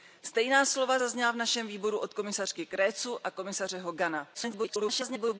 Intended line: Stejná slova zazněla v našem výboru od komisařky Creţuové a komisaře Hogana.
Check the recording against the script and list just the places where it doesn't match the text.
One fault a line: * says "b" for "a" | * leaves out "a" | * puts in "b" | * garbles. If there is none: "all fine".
* garbles